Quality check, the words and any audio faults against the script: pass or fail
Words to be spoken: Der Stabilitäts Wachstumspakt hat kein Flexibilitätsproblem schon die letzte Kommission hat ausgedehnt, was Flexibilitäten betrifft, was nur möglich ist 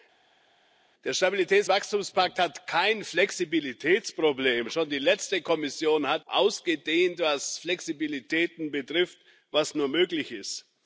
pass